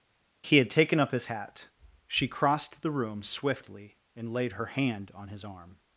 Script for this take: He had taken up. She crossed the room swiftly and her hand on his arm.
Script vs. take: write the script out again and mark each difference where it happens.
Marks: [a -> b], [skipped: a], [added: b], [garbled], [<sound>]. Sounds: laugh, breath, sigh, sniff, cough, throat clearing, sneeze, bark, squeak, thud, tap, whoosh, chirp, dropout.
He had taken up. [added: his hat] She crossed the room swiftly and [added: laid] her hand on his arm.